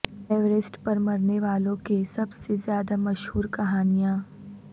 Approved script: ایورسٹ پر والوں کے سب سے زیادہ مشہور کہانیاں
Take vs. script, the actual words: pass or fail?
fail